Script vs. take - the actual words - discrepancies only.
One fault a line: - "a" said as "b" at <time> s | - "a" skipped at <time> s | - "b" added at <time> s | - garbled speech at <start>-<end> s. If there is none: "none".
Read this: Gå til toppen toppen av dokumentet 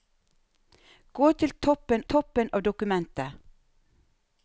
none